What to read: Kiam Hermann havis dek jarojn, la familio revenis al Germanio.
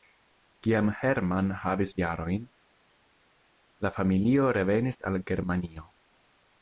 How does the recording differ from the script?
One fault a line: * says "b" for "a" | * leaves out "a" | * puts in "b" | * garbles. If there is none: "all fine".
* leaves out "dek"